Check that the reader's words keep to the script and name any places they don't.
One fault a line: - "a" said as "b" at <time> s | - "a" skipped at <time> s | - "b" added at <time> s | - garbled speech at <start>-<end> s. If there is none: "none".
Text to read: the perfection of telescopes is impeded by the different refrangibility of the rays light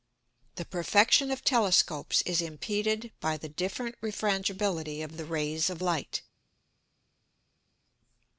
- "of" added at 5.7 s